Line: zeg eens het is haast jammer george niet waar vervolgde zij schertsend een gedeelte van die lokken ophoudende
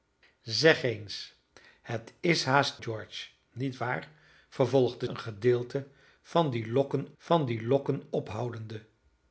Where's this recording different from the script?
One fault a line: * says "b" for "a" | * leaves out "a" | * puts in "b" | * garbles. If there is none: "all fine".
* leaves out "jammer"
* says "een gedeelte van die lokken" for "zij schertsend een gedeelte"